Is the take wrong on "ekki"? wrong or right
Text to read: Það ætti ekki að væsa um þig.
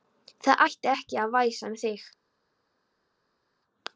right